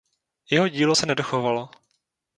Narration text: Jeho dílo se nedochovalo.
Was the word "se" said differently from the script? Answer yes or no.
no